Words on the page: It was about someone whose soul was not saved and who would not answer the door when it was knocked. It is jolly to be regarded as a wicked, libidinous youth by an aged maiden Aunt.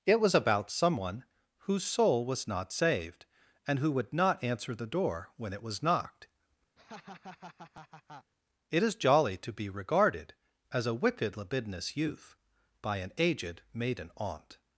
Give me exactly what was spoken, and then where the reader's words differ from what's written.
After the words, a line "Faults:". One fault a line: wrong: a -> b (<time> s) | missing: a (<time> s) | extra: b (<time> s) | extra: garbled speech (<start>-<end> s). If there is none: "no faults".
It was about someone whose soul was not saved and who would not answer the door when it was knocked. It is jolly to be regarded as a wicked, libidinous youth by an aged maiden Aunt.
Faults:
no faults